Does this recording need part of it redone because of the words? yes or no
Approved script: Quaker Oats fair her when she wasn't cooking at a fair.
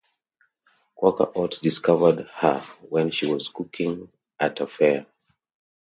yes